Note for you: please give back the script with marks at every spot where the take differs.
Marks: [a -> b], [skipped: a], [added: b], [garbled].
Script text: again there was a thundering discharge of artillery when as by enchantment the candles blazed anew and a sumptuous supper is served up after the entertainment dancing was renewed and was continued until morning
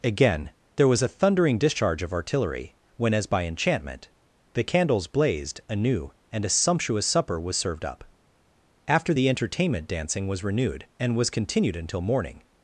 again there was a thundering discharge of artillery when as by enchantment the candles blazed anew and a sumptuous supper [is -> was] served up after the entertainment dancing was renewed and was continued until morning